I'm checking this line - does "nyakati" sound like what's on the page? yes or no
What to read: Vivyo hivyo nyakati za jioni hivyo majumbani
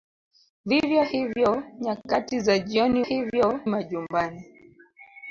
yes